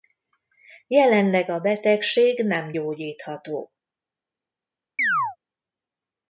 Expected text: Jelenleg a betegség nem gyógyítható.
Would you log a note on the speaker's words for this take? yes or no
no